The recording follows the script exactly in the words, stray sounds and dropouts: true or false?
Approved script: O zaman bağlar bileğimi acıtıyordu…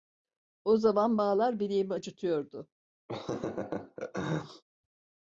false